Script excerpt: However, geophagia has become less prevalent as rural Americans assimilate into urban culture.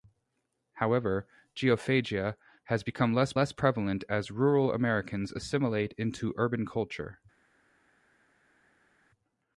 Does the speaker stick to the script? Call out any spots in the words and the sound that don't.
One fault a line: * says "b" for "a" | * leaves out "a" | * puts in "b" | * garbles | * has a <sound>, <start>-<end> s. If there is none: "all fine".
* puts in "less"